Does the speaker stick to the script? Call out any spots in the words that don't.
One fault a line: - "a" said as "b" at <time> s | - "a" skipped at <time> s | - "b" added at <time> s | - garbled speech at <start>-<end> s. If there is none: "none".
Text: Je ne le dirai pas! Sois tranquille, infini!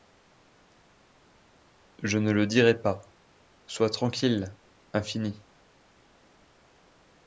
none